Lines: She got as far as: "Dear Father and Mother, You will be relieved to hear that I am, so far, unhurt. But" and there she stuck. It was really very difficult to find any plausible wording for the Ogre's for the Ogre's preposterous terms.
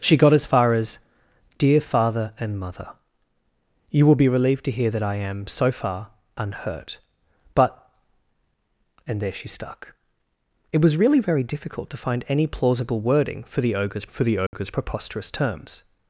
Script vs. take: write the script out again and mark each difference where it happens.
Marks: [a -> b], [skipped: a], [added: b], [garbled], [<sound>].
She got as far as: "Dear Father and Mother, You will be relieved to hear that I am, so far, unhurt. But" and there she stuck. It was really very difficult to find any plausible wording for the Ogre's for the Ogre's [dropout] preposterous terms.